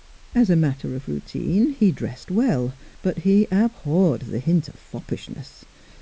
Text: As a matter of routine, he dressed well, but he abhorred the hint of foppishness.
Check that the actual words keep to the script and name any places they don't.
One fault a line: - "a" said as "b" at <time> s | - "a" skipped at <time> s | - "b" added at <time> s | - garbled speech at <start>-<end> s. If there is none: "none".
none